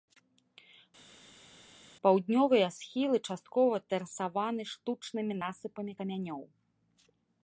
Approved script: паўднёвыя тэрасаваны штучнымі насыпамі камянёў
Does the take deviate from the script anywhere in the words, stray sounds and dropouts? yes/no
yes